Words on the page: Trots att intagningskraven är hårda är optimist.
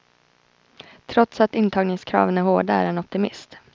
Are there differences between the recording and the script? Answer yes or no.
yes